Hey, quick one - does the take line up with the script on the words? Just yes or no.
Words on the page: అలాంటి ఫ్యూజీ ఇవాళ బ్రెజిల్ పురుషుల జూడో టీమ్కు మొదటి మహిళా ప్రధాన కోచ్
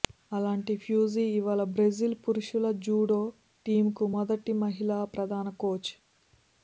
yes